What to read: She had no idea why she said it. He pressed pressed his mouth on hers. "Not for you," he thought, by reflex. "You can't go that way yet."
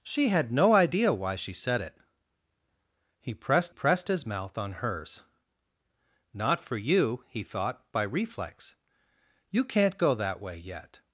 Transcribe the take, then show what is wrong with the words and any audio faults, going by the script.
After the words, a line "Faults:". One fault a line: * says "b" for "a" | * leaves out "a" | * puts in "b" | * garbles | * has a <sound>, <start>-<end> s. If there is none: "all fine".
She had no idea why she said it. He pressed pressed his mouth on hers. "Not for you," he thought, by reflex. "You can't go that way yet."
Faults:
all fine